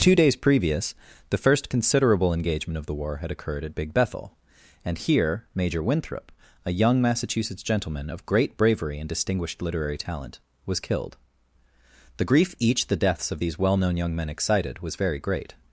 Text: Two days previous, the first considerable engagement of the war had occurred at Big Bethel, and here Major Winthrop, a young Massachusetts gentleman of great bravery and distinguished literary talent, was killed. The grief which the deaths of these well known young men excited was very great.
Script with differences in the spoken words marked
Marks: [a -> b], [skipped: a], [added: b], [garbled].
Two days previous, the first considerable engagement of the war had occurred at Big Bethel, and here Major Winthrop, a young Massachusetts gentleman of great bravery and distinguished literary talent, was killed. The grief [which -> each] the deaths of these well known young men excited was very great.